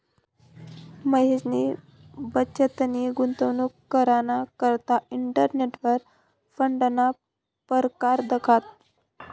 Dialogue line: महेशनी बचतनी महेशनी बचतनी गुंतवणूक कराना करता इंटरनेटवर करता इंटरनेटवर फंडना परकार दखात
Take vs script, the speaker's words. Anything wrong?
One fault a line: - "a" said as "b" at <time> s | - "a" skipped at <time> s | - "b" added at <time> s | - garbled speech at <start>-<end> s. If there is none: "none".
- "महेशनी बचतनी" skipped at 3.1 s
- "करता इंटरनेटवर" skipped at 6.0 s